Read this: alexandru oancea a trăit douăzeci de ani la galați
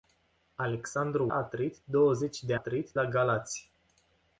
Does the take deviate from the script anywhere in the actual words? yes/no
yes